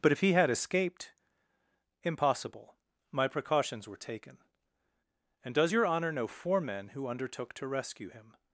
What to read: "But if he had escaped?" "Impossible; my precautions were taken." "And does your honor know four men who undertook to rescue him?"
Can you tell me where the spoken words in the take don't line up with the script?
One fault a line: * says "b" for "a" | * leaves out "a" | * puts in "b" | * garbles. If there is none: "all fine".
all fine